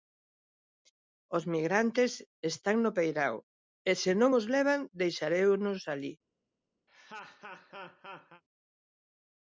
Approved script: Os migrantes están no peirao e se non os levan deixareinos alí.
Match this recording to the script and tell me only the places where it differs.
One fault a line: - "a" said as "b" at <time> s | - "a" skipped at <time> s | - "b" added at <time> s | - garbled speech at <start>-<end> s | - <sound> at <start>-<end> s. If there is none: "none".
- laugh at 6.9-8.4 s